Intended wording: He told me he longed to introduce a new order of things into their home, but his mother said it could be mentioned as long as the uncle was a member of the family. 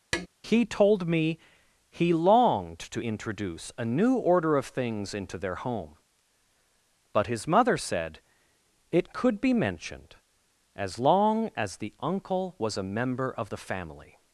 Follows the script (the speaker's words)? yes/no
yes